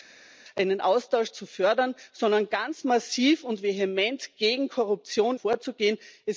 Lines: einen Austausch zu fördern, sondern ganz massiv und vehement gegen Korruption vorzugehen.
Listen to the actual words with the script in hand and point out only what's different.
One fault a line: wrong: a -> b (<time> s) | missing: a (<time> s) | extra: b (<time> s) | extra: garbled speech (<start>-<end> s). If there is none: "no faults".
no faults